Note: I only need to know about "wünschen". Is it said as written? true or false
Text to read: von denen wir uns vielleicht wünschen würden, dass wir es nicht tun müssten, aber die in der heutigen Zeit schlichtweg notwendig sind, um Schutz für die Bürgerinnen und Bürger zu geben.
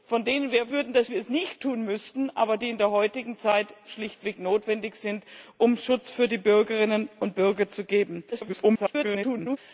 false